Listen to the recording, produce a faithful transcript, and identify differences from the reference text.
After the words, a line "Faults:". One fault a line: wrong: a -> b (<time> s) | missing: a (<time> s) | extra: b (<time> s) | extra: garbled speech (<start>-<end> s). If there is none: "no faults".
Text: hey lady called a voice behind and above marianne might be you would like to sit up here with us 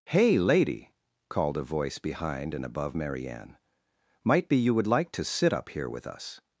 hey lady called a voice behind and above marianne might be you would like to sit up here with us
Faults:
no faults